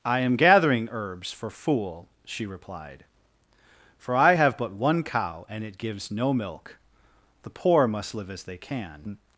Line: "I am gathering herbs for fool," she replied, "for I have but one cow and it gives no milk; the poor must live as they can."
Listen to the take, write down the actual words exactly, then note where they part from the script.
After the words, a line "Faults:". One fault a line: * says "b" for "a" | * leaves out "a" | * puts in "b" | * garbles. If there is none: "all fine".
"I am gathering herbs for fool," she replied, "for I have but one cow and it gives no milk; the poor must live as they can."
Faults:
all fine